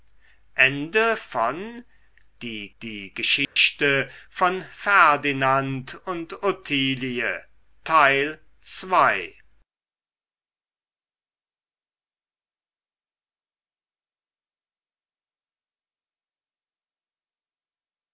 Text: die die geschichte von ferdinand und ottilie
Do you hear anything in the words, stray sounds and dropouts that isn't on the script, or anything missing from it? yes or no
yes